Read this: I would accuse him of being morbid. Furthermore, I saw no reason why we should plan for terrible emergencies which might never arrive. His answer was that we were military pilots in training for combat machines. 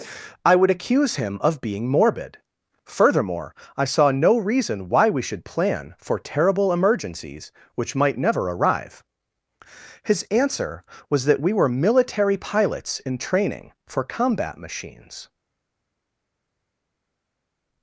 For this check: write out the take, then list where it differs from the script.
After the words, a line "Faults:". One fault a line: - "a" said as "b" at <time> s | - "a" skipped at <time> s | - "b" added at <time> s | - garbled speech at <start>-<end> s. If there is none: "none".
I would accuse him of being morbid. Furthermore, I saw no reason why we should plan for terrible emergencies which might never arrive. His answer was that we were military pilots in training for combat machines.
Faults:
none